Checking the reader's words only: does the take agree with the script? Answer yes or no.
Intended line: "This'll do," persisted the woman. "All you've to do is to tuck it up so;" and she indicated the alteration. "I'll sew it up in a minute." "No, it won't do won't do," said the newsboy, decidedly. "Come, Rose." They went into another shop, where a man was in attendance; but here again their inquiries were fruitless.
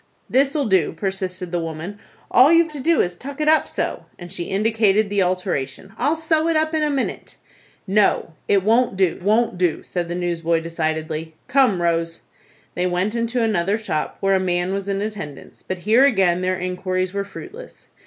yes